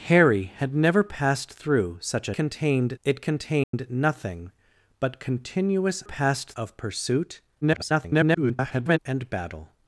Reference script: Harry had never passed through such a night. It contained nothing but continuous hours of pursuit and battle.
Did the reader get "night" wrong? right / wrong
wrong